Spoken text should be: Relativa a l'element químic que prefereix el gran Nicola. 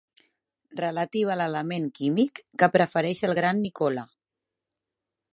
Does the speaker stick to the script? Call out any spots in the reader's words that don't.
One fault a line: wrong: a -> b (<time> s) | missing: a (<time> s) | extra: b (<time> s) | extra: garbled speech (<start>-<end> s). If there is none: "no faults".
no faults